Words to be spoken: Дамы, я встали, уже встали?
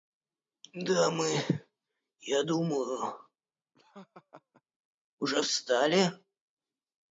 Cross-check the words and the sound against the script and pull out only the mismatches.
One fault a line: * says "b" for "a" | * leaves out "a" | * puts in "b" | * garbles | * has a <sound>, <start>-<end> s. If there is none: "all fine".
* says "думаю" for "встали"
* has a laugh, 3.7-4.6 s